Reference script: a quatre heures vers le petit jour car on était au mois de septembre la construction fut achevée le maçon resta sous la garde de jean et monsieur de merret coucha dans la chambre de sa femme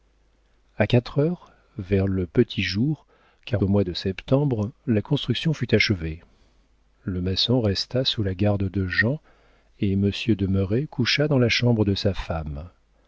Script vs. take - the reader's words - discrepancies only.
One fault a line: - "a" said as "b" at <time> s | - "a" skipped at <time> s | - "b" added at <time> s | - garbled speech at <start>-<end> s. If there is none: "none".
- "on était" skipped at 3.6 s